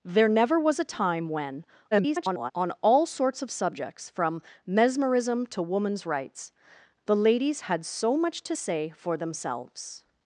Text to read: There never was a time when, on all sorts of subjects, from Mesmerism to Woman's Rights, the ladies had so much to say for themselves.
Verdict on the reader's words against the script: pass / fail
fail